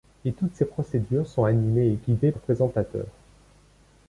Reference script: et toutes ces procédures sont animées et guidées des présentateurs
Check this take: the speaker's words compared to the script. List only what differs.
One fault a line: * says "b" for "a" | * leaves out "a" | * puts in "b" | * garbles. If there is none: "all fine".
all fine